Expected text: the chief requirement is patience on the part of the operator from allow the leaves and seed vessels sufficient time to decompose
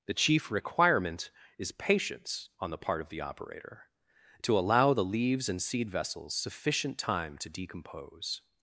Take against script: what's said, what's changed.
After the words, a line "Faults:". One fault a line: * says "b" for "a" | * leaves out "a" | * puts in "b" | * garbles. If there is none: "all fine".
the chief requirement is patience on the part of the operator to allow the leaves and seed vessels sufficient time to decompose
Faults:
* says "to" for "from"